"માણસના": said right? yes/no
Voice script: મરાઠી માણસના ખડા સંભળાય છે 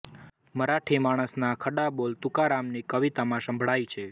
yes